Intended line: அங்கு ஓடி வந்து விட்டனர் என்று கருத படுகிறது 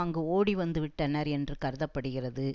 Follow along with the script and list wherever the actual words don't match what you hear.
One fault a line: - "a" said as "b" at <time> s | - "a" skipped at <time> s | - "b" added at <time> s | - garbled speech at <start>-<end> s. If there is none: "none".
none